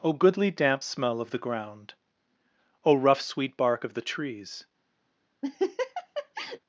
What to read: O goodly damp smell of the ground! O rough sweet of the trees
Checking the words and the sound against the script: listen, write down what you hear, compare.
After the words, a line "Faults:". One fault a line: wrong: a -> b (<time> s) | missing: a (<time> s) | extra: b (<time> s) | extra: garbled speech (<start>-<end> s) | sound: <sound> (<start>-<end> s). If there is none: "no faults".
O goodly damp smell of the ground! O rough sweet bark of the trees
Faults:
extra: bark (3.6 s)
sound: laugh (5.4-6.6 s)